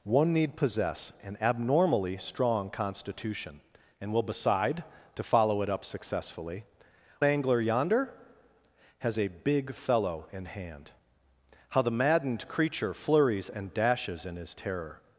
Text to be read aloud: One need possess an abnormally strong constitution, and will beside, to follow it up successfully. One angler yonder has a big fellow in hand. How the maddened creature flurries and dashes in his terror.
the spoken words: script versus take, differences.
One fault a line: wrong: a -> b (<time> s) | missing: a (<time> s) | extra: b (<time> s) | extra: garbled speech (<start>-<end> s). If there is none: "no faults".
missing: One (6.7 s)